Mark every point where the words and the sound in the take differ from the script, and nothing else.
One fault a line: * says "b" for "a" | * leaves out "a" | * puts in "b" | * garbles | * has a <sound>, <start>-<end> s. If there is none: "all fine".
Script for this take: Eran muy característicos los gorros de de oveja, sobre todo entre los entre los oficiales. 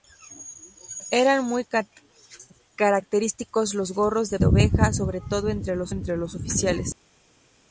all fine